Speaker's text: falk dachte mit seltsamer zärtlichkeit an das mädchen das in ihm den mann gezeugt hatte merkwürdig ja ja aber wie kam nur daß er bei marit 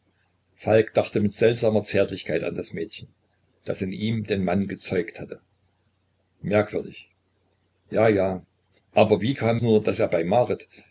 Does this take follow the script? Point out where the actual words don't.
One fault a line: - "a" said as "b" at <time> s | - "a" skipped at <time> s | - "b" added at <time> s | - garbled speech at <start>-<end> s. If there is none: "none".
none